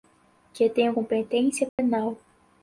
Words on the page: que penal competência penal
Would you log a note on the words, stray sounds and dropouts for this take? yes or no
yes